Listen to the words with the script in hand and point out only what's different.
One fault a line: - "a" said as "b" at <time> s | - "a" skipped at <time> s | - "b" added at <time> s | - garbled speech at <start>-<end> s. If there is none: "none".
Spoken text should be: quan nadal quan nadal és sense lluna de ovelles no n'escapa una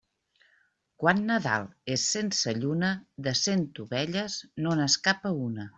- "quan nadal" skipped at 1.7 s
- "cent" added at 3.5 s